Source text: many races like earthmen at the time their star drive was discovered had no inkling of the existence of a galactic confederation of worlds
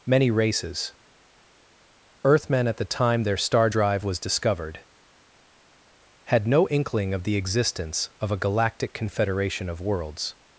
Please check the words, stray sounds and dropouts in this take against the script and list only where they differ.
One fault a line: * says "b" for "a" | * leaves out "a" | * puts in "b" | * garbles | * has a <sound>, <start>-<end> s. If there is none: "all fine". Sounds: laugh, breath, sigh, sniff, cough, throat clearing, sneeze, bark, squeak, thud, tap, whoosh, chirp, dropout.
* leaves out "like"